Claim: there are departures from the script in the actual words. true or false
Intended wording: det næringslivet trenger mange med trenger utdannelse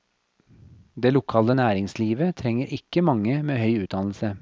true